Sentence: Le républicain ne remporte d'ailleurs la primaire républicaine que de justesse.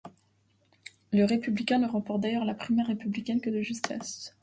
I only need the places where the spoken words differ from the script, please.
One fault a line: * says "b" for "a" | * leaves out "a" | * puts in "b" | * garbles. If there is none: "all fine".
all fine